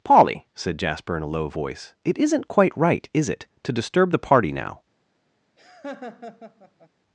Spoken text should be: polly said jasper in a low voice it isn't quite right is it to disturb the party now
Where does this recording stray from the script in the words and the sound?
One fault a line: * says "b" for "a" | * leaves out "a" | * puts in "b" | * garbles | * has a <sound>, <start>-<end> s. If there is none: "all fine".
* has a laugh, 5.6-6.9 s